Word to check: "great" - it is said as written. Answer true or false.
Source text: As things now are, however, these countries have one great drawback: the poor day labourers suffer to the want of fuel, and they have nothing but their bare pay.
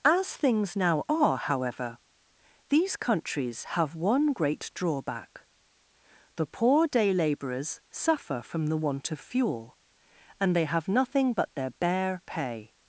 true